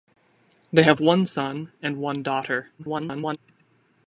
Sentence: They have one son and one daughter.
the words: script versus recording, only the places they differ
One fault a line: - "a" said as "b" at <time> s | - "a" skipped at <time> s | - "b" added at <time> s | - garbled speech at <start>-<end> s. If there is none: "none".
- garbled speech at 2.8-3.4 s